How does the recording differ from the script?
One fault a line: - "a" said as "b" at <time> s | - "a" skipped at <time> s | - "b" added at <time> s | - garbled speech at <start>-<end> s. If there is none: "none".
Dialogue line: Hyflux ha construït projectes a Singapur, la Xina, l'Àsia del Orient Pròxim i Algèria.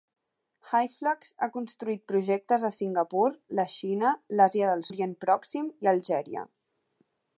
none